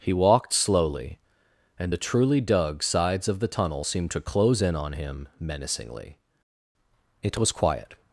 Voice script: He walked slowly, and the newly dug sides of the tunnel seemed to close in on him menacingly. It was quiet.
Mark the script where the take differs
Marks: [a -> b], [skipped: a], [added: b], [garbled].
He walked slowly, and the [newly -> truly] dug sides of the tunnel seemed to close in on him menacingly. It was quiet.